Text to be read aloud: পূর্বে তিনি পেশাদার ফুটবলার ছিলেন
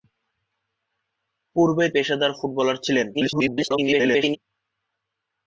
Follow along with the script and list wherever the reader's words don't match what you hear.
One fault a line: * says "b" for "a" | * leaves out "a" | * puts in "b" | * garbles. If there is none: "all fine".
* leaves out "তিনি"
* garbles